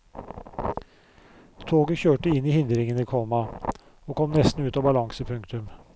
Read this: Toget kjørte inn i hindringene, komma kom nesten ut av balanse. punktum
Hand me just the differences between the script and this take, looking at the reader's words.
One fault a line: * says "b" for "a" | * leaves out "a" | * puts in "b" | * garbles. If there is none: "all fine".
* puts in "og"